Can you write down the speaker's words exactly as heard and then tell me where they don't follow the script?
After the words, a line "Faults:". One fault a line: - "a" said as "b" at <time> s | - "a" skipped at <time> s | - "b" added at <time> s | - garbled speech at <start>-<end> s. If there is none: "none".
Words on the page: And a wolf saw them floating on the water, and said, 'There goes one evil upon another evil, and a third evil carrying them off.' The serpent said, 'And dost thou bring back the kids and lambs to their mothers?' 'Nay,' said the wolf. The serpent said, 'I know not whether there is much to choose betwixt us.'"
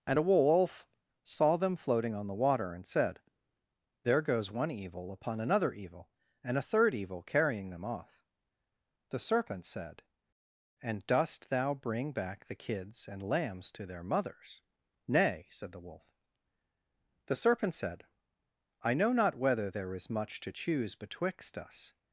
And a wolf saw them floating on the water, and said, 'There goes one evil upon another evil, and a third evil carrying them off.' The serpent said, 'And dost thou bring back the kids and lambs to their mothers?' 'Nay,' said the wolf. The serpent said, 'I know not whether there is much to choose betwixt us.'"
Faults:
none